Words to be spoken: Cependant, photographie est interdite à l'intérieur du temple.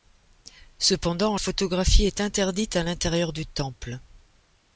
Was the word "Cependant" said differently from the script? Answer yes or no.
no